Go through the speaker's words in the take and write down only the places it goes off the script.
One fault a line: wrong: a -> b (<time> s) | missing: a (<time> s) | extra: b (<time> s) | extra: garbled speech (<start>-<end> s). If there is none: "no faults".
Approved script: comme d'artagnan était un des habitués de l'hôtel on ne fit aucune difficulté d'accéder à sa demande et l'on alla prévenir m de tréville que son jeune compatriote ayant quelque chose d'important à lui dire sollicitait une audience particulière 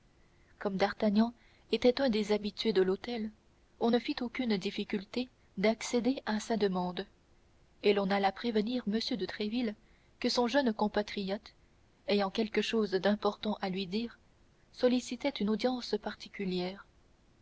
no faults